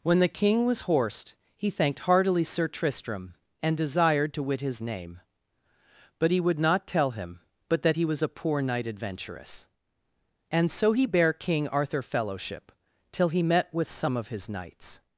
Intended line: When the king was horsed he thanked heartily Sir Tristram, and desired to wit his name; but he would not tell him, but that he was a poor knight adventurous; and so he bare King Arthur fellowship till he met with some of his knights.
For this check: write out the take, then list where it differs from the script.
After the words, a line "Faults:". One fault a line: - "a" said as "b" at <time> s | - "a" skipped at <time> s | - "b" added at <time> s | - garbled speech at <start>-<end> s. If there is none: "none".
When the king was horsed he thanked heartily Sir Tristram, and desired to wit his name; but he would not tell him, but that he was a poor knight adventurous; and so he bare King Arthur fellowship till he met with some of his knights.
Faults:
none